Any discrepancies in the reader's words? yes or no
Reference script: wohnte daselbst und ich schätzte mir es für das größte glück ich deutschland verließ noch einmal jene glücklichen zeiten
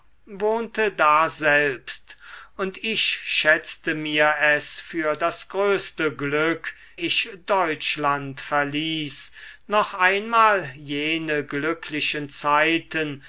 no